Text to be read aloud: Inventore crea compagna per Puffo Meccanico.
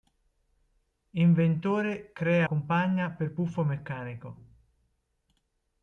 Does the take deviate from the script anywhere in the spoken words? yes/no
no